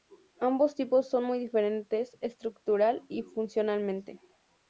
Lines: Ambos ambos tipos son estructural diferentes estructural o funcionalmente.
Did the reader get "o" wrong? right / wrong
wrong